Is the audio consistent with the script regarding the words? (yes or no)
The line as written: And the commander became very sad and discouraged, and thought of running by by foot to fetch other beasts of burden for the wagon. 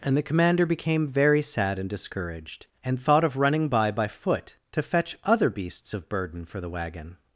yes